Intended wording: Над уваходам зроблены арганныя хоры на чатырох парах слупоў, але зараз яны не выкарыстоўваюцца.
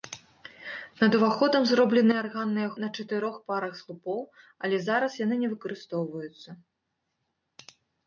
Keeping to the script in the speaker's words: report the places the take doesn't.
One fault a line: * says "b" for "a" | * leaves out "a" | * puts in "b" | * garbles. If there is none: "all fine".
* leaves out "хоры"